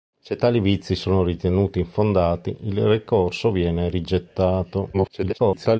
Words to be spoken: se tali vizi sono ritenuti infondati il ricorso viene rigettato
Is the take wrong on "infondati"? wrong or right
right